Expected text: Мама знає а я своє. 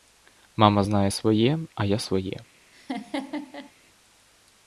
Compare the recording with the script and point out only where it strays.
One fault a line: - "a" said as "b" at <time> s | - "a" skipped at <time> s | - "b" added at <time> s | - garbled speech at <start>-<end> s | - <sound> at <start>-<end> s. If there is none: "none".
- "своє" added at 1.1 s
- laugh at 2.7-3.7 s